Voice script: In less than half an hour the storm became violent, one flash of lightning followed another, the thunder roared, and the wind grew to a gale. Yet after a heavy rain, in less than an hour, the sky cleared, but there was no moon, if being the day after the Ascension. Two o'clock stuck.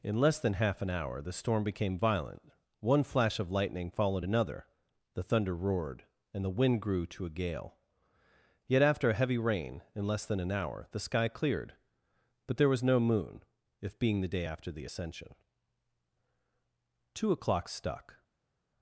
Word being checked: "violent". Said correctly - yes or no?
yes